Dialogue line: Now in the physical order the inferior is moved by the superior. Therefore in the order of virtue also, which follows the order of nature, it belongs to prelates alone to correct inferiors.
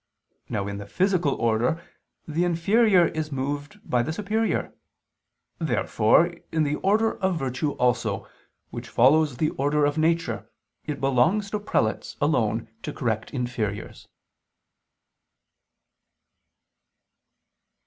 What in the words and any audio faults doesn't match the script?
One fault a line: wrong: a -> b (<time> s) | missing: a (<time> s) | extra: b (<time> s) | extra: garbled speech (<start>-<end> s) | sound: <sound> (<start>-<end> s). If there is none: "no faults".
no faults